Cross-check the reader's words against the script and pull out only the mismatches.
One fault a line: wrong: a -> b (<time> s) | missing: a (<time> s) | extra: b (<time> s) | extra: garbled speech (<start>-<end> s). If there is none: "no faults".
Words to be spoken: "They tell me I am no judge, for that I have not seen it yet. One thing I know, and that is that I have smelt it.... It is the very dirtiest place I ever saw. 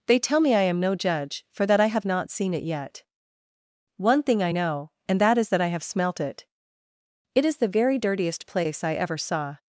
no faults